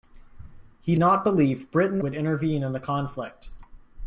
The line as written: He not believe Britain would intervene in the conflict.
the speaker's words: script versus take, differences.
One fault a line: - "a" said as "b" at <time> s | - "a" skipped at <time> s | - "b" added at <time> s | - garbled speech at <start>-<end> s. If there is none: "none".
none